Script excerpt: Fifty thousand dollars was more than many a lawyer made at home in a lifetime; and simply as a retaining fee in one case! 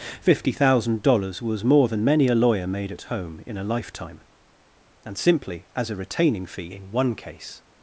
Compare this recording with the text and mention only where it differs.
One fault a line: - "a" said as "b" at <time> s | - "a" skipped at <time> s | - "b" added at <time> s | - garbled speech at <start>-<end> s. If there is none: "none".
none